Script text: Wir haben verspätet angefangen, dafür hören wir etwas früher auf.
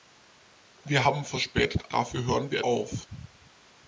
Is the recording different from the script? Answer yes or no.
yes